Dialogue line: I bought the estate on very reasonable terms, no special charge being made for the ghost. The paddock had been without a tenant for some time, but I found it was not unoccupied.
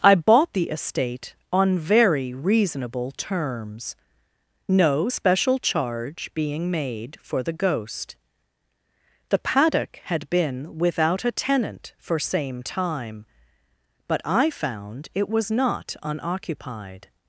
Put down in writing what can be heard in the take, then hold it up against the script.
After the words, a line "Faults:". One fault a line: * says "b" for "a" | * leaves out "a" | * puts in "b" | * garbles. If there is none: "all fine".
I bought the estate on very reasonable terms, no special charge being made for the ghost. The paddock had been without a tenant for same time, but I found it was not unoccupied.
Faults:
* says "same" for "some"